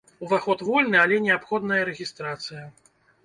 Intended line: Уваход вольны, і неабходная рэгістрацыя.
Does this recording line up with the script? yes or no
no